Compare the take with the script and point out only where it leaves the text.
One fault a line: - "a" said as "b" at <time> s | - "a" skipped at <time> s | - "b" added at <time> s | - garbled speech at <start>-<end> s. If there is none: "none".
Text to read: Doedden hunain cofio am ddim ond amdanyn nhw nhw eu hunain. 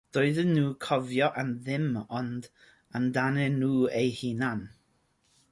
- "hunain" said as "nhw'n" at 0.5 s
- "nhw" skipped at 3.7 s